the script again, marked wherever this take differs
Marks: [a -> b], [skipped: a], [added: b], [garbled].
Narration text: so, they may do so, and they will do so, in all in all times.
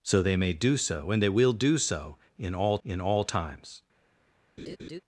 so, they may do so, and they will do so, in all in all times.